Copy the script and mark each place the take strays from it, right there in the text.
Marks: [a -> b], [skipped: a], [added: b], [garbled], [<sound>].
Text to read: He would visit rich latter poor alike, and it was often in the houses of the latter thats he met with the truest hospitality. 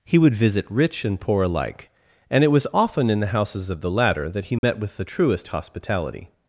He would visit rich [latter -> and] poor alike, and it was often in the houses of the latter [thats -> that] he met [dropout] with the truest hospitality.